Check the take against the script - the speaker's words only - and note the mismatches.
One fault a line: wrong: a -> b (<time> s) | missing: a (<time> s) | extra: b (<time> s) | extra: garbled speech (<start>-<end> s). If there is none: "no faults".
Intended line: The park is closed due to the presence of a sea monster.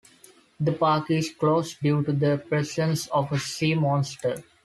no faults